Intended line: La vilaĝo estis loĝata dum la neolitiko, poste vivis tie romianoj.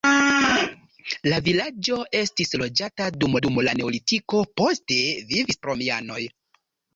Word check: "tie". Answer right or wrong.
wrong